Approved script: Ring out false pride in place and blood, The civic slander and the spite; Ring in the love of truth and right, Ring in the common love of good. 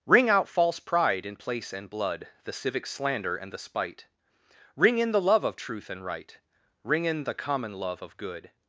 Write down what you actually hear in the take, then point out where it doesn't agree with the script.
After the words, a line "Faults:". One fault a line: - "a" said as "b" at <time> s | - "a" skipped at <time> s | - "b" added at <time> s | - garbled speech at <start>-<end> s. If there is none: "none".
Ring out false pride in place and blood, The civic slander and the spite; Ring in the love of truth and right, Ring in the common love of good.
Faults:
none